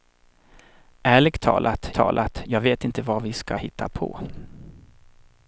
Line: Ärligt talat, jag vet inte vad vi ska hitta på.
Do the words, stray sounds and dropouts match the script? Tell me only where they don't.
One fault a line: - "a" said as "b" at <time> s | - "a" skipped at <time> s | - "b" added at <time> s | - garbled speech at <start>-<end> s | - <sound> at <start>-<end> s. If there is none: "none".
- "talat" added at 1.9 s